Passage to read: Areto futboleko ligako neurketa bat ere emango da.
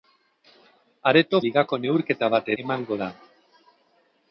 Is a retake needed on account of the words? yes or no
yes